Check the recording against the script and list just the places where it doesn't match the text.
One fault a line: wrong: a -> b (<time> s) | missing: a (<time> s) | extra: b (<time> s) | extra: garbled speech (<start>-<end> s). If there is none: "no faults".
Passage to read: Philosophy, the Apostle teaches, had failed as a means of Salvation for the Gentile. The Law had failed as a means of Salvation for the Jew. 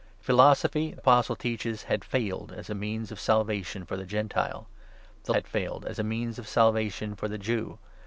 missing: the (0.9 s)
missing: Law (5.3 s)